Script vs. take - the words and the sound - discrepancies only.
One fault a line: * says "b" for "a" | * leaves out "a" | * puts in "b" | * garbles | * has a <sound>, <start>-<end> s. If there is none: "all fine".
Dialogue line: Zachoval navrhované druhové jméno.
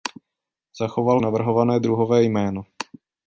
all fine